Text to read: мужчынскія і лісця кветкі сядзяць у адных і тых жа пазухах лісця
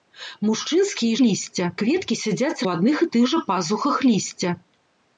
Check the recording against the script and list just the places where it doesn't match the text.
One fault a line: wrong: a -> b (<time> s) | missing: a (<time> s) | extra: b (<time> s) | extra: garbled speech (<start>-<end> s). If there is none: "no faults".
no faults